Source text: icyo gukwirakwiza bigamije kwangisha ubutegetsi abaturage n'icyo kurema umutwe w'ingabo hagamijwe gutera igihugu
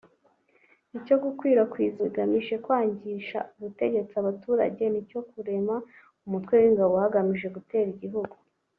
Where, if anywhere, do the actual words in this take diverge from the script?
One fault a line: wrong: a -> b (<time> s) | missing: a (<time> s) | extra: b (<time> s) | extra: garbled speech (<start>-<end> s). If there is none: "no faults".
no faults